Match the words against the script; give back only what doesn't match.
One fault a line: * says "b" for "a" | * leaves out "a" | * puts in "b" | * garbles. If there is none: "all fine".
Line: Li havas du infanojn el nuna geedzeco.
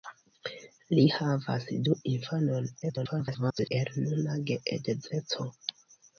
* garbles